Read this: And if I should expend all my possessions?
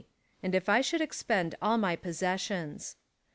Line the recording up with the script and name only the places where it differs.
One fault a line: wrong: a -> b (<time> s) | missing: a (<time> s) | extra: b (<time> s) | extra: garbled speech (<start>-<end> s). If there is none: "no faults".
no faults